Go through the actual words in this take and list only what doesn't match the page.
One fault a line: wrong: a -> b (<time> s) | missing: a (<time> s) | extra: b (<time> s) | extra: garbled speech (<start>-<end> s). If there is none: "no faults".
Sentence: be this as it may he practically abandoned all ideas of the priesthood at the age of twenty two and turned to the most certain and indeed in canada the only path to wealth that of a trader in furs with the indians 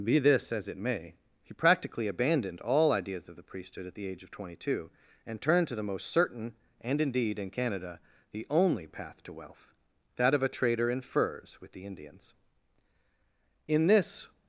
extra: in this (13.7 s)